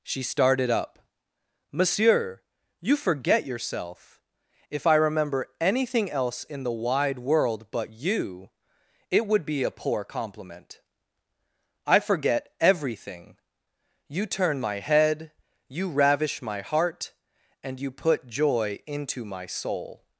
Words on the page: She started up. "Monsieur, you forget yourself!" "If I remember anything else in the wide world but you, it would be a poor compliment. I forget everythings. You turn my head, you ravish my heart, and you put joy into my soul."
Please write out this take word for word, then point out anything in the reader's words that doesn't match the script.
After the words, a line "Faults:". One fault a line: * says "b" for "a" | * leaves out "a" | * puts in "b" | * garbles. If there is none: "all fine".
She started up. "Monsieur, you forget yourself!" "If I remember anything else in the wide world but you, it would be a poor compliment. I forget everything. You turn my head, you ravish my heart, and you put joy into my soul."
Faults:
* says "everything" for "everythings"